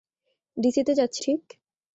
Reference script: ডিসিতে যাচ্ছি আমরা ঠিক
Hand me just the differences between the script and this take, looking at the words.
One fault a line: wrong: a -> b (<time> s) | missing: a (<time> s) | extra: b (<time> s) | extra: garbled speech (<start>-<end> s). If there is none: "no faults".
missing: আমরা (1.2 s)